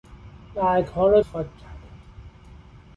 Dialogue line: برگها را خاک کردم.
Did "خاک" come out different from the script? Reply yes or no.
no